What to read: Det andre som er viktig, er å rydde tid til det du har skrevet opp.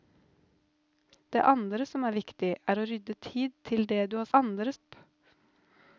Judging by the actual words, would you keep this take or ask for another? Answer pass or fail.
fail